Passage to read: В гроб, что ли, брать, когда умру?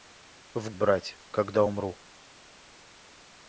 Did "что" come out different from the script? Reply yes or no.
yes